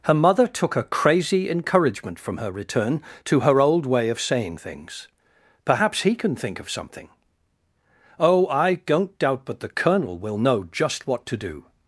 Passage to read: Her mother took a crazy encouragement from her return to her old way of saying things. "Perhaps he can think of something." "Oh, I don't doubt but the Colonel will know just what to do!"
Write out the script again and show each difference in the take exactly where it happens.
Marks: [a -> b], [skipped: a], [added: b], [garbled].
Her mother took a crazy encouragement from her return to her old way of saying things. "Perhaps he can think of something." "Oh, I don't doubt but the Colonel will know just what to do!"